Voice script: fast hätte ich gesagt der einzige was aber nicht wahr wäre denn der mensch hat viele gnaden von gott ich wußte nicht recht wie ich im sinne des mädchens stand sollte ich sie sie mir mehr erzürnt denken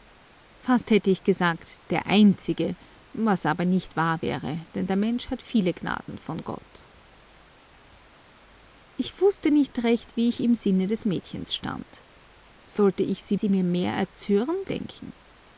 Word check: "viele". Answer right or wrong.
right